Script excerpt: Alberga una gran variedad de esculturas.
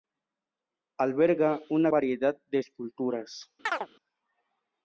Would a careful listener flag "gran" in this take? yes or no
yes